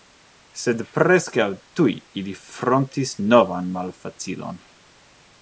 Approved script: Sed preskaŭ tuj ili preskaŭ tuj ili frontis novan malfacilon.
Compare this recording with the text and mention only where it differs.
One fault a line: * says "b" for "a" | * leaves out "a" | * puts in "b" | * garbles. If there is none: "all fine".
* leaves out "preskaŭ tuj ili"